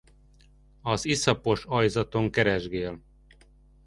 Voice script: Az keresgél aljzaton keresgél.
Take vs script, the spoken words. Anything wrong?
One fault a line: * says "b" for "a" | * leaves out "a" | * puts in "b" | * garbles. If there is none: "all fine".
* says "iszapos" for "keresgél"